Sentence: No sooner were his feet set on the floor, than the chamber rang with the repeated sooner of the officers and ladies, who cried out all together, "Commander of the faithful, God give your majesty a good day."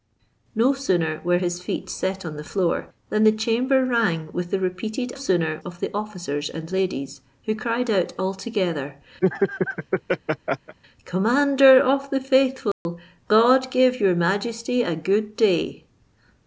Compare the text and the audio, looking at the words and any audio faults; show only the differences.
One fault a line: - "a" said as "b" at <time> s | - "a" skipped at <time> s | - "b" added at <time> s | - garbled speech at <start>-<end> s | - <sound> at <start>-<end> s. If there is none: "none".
- laugh at 9.2-10.8 s
- dropout at 12.7-12.9 s